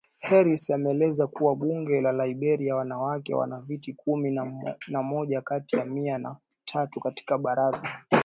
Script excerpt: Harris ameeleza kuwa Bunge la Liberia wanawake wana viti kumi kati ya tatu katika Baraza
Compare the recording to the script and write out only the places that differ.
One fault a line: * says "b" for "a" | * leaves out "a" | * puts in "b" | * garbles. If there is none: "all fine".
* puts in "na moja"
* puts in "mia na"